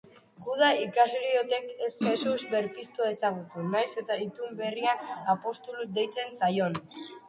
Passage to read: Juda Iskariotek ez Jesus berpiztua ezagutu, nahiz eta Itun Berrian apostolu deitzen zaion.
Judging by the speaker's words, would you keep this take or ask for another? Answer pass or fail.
pass